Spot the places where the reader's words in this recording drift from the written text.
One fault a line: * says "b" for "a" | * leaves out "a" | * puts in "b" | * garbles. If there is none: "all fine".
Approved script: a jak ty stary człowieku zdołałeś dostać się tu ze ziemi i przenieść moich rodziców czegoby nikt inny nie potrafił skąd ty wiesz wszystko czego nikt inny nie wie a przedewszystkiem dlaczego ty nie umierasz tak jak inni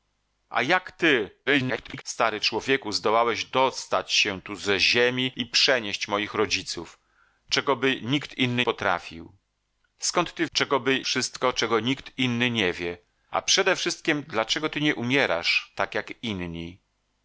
* garbles
* leaves out "nie"
* says "czegoby" for "wiesz"